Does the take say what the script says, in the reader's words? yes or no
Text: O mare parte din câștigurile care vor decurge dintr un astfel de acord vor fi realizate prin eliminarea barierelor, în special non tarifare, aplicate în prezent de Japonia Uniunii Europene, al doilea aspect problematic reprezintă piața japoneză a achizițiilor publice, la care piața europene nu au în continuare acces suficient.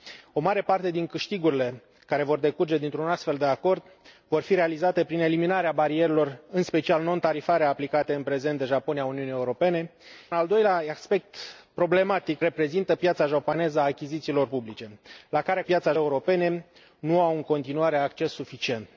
yes